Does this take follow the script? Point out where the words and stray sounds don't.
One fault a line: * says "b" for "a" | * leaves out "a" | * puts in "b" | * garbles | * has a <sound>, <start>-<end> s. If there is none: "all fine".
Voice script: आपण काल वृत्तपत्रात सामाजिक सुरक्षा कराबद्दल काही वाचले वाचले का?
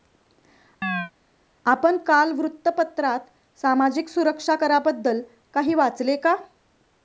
* has a chirp, 0.8-1.1 s
* leaves out "वाचले"